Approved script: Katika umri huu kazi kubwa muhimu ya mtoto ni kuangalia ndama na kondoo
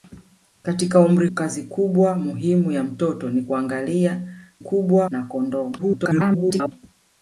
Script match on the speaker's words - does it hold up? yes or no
no